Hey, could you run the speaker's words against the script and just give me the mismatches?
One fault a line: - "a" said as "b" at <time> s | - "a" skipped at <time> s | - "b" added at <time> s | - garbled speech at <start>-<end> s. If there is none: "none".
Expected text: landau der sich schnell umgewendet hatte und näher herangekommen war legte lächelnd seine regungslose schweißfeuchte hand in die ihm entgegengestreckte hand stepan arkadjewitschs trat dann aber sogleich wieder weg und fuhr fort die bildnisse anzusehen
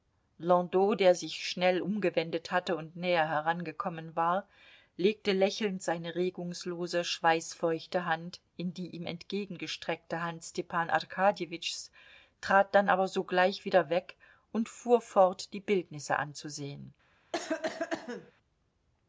none